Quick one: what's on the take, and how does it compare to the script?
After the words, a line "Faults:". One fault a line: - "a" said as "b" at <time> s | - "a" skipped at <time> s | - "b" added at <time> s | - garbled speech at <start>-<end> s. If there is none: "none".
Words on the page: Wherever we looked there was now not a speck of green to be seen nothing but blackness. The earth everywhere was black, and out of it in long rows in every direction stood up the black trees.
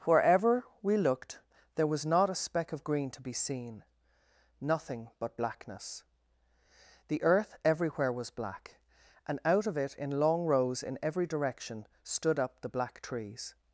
Wherever we looked there was not a speck of green to be seen nothing but blackness. The earth everywhere was black, and out of it in long rows in every direction stood up the black trees.
Faults:
- "now" skipped at 2.1 s